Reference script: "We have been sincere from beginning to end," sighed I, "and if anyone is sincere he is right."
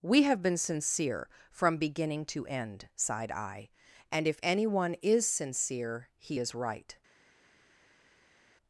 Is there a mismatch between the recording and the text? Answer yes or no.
no